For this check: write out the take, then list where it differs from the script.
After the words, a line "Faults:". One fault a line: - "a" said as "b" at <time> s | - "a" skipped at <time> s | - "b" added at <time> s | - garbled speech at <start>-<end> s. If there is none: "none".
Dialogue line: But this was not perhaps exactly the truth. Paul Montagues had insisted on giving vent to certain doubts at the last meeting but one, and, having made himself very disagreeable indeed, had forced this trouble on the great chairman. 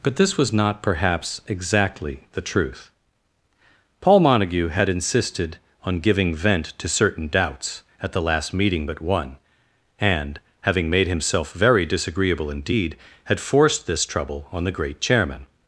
But this was not perhaps exactly the truth. Paul Montague had insisted on giving vent to certain doubts at the last meeting but one, and, having made himself very disagreeable indeed, had forced this trouble on the great chairman.
Faults:
- "Montagues" said as "Montague" at 4.2 s